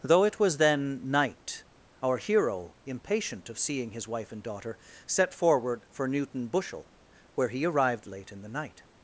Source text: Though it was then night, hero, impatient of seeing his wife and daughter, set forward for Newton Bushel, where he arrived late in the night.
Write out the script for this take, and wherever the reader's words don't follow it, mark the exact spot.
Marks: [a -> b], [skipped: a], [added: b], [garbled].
Though it was then night, [added: our] hero, impatient of seeing his wife and daughter, set forward for Newton Bushel, where he arrived late in the night.